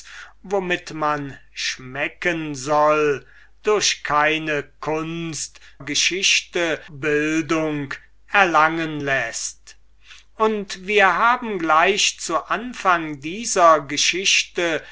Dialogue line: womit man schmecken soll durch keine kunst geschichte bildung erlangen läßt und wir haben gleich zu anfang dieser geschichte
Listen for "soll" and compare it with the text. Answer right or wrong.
right